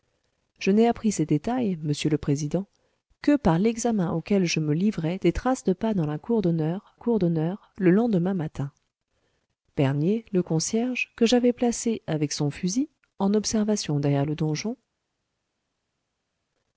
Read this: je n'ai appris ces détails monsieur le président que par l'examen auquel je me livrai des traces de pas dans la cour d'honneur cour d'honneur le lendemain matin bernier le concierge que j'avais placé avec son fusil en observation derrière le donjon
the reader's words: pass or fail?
pass